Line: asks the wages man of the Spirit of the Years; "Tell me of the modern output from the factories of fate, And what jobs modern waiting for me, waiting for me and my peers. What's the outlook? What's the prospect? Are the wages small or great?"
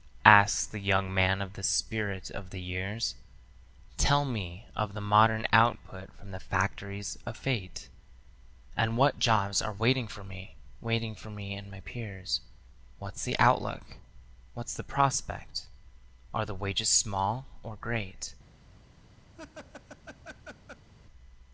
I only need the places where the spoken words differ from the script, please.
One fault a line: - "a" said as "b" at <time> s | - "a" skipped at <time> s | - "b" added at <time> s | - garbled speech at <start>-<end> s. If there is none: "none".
- "wages" said as "young" at 0.8 s
- "modern" said as "are" at 9.6 s